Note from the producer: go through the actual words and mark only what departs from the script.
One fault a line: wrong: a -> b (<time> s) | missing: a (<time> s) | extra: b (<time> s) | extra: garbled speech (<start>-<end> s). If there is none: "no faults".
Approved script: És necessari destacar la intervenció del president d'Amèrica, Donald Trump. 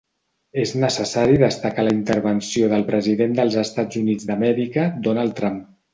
extra: dels Estats Units (3.4 s)